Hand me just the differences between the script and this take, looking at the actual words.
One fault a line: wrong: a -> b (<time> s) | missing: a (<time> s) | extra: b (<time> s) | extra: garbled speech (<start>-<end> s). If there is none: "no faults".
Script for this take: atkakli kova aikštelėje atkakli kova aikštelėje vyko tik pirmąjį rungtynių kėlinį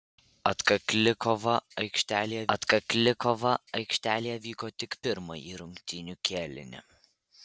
no faults